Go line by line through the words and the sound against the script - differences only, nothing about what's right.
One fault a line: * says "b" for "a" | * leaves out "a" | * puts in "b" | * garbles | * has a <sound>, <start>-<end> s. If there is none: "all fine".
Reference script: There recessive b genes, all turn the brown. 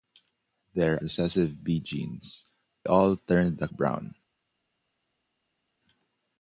all fine